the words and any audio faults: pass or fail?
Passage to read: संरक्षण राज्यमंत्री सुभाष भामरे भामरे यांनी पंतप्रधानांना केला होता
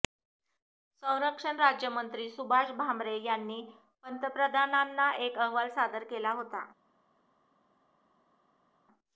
fail